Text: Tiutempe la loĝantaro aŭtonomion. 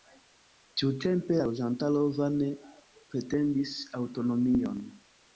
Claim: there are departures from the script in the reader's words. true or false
true